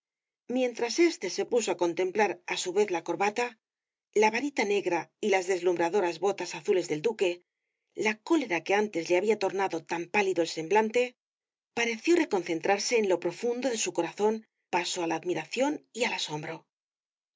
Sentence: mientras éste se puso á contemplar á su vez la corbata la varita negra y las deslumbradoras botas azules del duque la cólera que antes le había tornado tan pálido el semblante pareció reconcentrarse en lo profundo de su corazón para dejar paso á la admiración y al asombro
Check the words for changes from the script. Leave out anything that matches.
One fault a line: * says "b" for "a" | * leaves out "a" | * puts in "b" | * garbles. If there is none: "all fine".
* leaves out "para dejar"